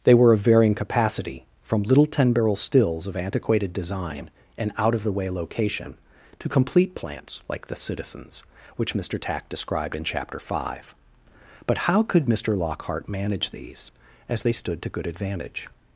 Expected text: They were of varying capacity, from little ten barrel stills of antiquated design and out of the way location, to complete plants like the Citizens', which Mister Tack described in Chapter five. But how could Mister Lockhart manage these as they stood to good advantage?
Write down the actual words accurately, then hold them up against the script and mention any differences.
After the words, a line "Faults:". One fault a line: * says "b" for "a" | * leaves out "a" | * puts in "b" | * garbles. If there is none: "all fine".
They were of varying capacity, from little ten barrel stills of antiquated design and out of the way location, to complete plants like the Citizens', which Mister Tack described in Chapter five. But how could Mister Lockhart manage these as they stood to good advantage?
Faults:
all fine